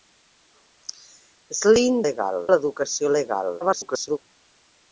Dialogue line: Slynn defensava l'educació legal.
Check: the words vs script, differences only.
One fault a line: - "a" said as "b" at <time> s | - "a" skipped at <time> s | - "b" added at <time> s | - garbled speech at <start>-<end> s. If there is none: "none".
- "defensava" said as "legal" at 2.1 s
- garbled speech at 3.6-4.2 s